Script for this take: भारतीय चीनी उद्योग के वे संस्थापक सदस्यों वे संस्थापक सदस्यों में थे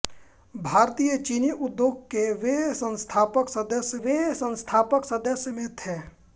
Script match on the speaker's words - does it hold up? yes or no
yes